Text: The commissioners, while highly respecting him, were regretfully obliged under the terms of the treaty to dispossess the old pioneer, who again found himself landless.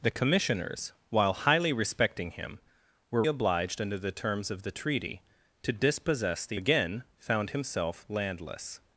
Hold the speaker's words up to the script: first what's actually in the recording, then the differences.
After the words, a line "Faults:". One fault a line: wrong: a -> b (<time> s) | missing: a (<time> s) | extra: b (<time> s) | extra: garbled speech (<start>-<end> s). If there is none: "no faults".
The commissioners, while highly respecting him, were obliged under the terms of the treaty to dispossess the again found himself landless.
Faults:
missing: regretfully (3.2 s)
missing: old pioneer who (6.6 s)